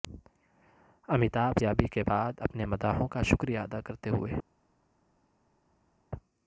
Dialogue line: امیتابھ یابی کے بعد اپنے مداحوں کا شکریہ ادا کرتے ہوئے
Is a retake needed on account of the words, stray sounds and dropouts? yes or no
no